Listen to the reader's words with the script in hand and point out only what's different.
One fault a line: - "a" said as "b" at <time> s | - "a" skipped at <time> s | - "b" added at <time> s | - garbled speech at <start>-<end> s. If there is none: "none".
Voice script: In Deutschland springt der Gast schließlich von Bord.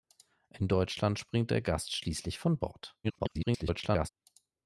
- garbled speech at 3.0-4.1 s